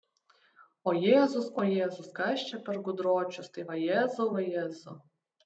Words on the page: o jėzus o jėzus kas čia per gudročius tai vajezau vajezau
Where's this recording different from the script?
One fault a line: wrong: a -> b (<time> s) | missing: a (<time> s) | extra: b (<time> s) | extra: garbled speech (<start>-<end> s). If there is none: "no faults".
no faults